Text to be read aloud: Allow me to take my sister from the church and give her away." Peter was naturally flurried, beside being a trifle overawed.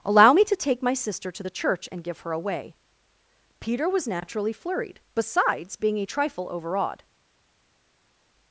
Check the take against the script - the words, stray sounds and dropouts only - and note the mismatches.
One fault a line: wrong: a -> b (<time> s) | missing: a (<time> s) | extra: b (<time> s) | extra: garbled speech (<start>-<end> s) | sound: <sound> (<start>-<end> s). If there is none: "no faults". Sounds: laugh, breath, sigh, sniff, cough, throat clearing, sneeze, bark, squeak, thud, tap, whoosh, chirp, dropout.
wrong: from -> to (1.3 s)
wrong: beside -> besides (5.1 s)